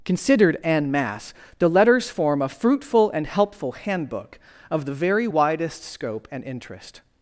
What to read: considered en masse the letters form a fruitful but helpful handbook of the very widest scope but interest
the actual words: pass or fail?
fail